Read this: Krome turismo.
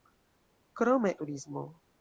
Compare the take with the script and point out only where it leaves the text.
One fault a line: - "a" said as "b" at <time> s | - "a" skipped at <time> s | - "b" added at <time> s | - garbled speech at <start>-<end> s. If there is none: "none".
none